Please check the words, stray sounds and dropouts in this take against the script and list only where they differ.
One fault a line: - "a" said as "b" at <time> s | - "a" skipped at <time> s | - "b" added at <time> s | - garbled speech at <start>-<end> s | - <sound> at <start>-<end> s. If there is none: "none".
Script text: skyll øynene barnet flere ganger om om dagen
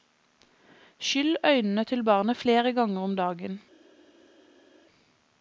- "til" added at 1.8 s
- "om" skipped at 3.1 s